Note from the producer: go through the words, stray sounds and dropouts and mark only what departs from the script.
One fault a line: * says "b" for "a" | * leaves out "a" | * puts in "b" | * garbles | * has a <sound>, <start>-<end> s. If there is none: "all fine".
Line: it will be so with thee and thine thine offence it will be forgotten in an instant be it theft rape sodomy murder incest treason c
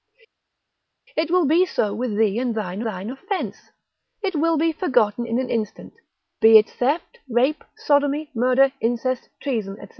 all fine